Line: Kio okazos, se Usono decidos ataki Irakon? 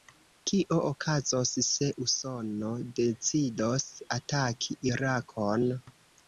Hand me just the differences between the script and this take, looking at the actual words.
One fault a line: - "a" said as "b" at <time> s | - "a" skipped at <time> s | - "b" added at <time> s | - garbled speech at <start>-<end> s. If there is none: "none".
none